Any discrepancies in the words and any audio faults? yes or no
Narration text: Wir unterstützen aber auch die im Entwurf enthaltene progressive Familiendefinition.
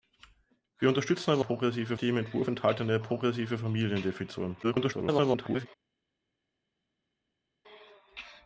yes